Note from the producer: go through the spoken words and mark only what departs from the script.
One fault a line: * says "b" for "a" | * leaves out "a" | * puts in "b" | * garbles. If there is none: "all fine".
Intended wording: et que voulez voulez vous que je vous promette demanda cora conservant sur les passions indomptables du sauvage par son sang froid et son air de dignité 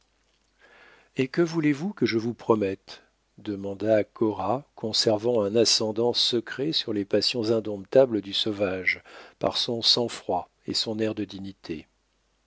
* leaves out "voulez"
* puts in "un ascendant secret"